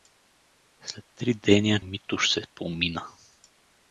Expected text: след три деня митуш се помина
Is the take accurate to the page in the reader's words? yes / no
yes